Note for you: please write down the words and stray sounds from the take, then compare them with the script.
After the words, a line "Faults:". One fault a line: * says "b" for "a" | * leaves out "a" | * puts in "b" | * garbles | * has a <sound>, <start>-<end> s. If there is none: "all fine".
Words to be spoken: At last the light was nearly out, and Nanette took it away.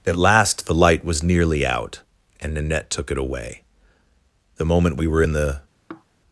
At last the light was nearly out, and Nanette took it away. The moment we were in the
Faults:
* puts in "The moment we were in the"
* has a sigh, 5.9-6.1 s